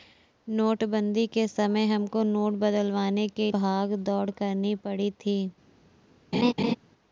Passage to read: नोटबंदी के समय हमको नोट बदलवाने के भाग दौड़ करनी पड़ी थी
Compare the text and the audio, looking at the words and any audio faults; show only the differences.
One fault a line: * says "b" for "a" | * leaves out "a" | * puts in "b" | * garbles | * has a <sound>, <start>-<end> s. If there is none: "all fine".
* has a laugh, 6.3-6.8 s